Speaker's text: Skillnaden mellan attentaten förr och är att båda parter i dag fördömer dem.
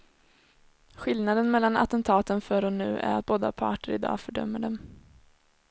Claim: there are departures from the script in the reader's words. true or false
true